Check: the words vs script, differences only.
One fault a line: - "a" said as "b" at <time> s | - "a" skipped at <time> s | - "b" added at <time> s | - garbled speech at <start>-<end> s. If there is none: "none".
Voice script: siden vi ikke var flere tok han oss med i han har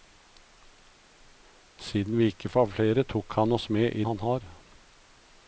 none